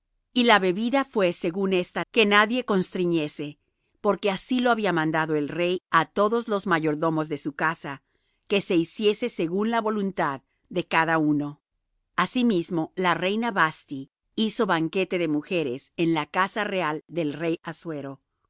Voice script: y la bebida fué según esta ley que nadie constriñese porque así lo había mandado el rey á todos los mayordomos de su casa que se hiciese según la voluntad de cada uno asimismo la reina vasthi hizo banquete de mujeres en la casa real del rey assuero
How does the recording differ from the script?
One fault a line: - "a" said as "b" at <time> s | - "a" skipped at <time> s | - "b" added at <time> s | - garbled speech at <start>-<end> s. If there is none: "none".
- "ley" skipped at 2.0 s